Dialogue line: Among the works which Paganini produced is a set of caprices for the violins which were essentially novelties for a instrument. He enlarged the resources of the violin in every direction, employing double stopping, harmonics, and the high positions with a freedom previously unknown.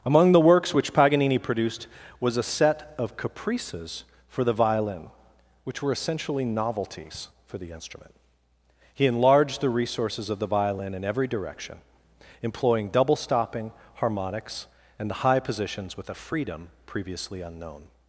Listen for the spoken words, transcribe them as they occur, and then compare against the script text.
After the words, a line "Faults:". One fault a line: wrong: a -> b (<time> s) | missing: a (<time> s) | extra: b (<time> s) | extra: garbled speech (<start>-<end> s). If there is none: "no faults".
Among the works which Paganini produced was a set of caprices for the violin which were essentially novelties for the instrument. He enlarged the resources of the violin in every direction, employing double stopping, harmonics, and the high positions with a freedom previously unknown.
Faults:
wrong: is -> was (2.2 s)
wrong: violins -> violin (4.5 s)
wrong: a -> the (7.6 s)